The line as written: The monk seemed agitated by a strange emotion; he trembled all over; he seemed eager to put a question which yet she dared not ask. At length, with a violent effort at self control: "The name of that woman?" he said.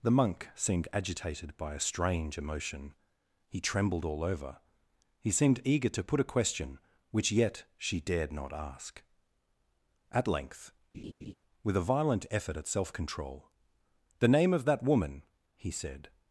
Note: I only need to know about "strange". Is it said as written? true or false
true